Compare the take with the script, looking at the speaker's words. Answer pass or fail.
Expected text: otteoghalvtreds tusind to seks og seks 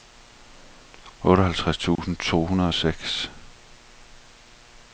fail